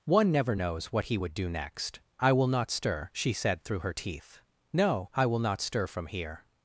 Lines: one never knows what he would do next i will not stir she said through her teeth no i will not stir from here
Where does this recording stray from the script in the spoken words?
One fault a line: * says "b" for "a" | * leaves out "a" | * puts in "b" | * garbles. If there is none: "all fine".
all fine